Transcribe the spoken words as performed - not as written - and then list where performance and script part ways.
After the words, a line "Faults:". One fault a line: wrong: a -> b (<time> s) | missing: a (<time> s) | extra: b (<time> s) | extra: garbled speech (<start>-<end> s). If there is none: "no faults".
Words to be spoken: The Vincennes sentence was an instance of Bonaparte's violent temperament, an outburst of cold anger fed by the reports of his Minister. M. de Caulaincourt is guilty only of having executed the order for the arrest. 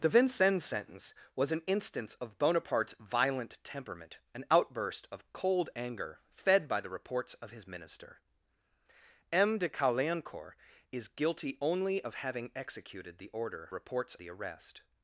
The Vincennes sentence was an instance of Bonaparte's violent temperament, an outburst of cold anger fed by the reports of his Minister. M. de Caulaincourt is guilty only of having executed the order reports the arrest.
Faults:
wrong: for -> reports (13.7 s)